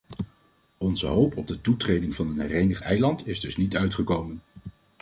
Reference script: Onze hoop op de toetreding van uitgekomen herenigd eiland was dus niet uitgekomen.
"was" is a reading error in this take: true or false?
true